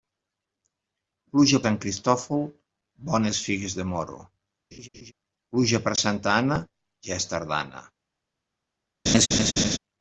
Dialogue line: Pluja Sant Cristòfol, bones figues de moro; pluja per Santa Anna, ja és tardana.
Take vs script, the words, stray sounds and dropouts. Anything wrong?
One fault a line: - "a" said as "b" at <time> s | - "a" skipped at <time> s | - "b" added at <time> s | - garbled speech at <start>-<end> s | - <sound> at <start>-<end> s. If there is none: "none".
- laugh at 4.7-5.1 s
- laugh at 9.1-9.8 s